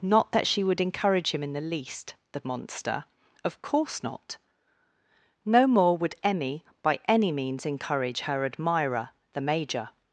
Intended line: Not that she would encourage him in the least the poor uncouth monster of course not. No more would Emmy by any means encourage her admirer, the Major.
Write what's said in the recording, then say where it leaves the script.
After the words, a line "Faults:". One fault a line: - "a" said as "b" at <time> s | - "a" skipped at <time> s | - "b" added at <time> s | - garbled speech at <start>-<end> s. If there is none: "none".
Not that she would encourage him in the least the monster of course not. No more would Emmy by any means encourage her admirer, the Major.
Faults:
- "poor uncouth" skipped at 2.4 s